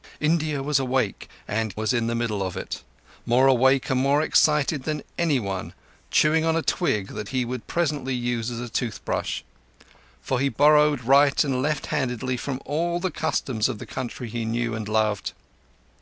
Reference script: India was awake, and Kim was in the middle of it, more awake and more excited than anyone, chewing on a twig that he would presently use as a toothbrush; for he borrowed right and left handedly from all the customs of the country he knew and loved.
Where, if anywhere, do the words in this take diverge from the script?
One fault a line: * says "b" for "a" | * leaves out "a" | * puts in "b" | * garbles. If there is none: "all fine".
* leaves out "Kim"